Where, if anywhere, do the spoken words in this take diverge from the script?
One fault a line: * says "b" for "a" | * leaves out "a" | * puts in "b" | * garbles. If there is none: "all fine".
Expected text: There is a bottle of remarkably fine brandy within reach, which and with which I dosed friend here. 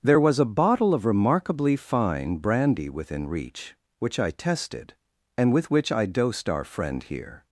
* says "was" for "is"
* puts in "I tested"
* puts in "our"